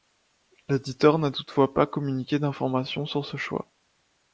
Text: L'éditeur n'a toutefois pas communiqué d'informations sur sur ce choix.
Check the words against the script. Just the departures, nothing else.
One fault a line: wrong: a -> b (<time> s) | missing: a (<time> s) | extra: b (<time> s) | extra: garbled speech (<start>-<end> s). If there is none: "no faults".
missing: sur (3.2 s)